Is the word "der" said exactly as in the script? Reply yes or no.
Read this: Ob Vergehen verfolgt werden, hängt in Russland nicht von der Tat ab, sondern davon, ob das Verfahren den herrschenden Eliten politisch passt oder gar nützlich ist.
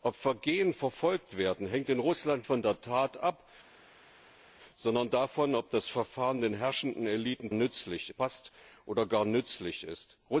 yes